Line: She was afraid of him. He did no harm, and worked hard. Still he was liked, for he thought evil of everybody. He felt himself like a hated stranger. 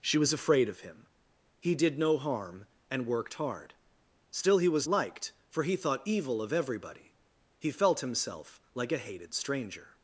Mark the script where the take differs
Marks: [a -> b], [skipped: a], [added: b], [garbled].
She was afraid of him. He did no harm, and worked hard. Still he was liked, for he thought evil of everybody. He felt himself like a hated stranger.